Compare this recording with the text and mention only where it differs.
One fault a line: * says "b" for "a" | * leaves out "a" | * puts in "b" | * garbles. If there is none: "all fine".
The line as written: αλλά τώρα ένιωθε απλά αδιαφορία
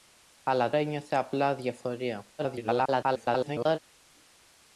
* leaves out "τώρα"
* garbles